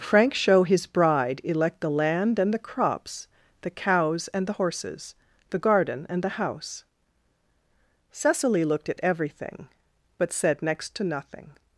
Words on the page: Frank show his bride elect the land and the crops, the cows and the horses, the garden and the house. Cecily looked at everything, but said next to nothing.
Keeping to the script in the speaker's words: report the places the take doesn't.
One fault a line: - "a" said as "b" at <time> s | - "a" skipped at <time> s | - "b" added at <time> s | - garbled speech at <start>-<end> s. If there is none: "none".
none